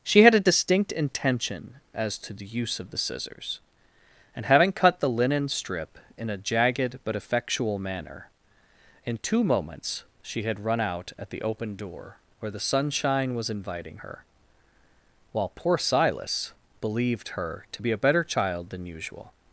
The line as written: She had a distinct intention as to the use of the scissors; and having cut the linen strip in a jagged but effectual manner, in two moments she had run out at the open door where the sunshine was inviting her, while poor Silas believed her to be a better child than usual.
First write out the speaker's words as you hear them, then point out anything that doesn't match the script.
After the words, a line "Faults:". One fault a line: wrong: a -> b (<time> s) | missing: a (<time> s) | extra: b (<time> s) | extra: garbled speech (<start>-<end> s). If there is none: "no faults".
She had a distinct intention as to the use of the scissors; and having cut the linen strip in a jagged but effectual manner, in two moments she had run out at the open door where the sunshine was inviting her, while poor Silas believed her to be a better child than usual.
Faults:
no faults